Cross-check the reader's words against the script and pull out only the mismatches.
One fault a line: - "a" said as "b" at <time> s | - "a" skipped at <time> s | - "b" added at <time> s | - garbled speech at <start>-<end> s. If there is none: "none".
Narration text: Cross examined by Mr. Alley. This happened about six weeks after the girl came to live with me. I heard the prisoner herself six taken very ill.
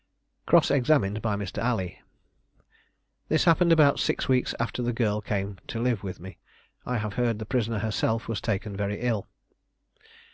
- "have" added at 7.0 s
- "six" said as "was" at 8.3 s